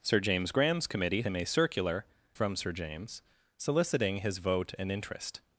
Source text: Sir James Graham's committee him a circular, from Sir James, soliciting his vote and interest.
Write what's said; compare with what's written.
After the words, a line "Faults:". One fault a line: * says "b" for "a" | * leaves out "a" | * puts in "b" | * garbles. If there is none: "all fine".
Sir James Graham's committee him a circular, from Sir James, soliciting his vote and interest.
Faults:
all fine